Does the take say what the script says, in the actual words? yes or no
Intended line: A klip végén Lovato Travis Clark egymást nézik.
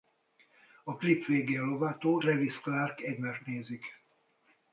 yes